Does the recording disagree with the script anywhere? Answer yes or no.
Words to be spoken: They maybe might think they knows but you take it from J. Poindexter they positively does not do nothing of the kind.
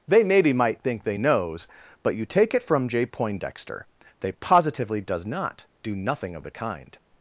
no